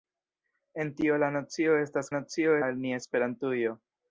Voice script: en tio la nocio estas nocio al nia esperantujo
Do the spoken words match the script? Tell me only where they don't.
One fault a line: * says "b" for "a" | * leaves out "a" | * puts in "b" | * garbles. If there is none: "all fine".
all fine